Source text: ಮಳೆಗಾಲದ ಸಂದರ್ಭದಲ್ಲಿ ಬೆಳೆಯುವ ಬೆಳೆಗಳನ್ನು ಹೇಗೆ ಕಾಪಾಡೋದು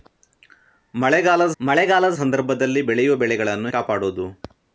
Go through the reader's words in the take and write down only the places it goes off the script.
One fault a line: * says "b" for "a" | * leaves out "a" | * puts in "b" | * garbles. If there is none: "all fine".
* puts in "ಮಳೆಗಾಲದ"
* leaves out "ಹೇಗೆ"